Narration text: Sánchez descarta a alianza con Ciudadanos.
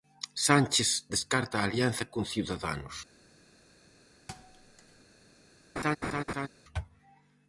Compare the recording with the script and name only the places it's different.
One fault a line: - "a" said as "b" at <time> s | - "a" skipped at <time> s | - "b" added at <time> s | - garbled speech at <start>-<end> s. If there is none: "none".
none